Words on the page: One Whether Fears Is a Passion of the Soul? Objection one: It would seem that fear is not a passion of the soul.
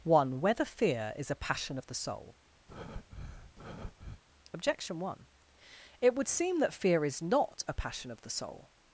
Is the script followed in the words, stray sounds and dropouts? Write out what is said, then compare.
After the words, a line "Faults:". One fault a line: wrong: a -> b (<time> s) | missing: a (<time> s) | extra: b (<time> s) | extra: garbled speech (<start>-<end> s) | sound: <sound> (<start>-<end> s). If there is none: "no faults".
One Whether Fear Is a Passion of the Soul? Objection one: It would seem that fear is not a passion of the soul.
Faults:
wrong: Fears -> Fear (0.7 s)
sound: breath (2.7-4.2 s)